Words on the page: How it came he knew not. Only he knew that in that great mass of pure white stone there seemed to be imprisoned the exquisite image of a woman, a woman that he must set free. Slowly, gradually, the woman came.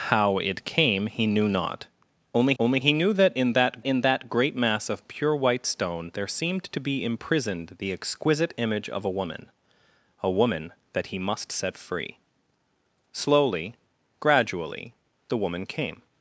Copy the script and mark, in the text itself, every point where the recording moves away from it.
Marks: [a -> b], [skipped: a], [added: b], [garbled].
How it came he knew not. Only [added: only] he knew that in that [added: in that] great mass of pure white stone there seemed to be imprisoned the exquisite image of a woman, a woman that he must set free. Slowly, gradually, the woman came.